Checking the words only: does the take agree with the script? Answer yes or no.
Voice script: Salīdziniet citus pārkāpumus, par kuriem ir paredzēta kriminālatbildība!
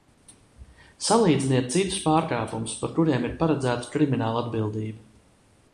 yes